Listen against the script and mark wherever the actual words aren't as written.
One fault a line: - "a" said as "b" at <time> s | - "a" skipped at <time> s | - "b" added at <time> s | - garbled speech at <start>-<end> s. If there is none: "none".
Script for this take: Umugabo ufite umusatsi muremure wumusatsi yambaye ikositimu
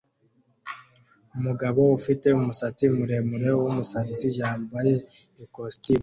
none